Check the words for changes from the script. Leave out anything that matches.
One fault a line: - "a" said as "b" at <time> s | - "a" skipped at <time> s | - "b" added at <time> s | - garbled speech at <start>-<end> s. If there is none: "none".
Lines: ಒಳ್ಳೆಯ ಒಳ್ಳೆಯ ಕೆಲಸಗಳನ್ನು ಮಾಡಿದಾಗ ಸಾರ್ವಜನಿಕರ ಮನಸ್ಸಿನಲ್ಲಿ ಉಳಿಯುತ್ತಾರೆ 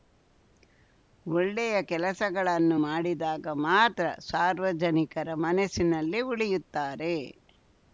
- "ಒಳ್ಳೆಯ" skipped at 1.8 s
- "ಮಾತ್ರ" added at 3.6 s